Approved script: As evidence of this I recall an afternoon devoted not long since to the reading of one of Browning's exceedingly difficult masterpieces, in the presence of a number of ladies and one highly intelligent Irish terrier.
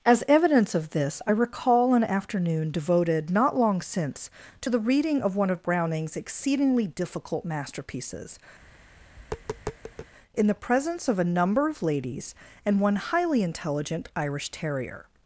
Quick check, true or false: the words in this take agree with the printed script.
true